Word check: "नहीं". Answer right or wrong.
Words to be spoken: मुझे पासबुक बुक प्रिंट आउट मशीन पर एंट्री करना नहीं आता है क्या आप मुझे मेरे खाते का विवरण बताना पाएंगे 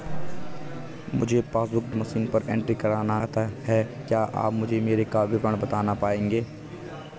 wrong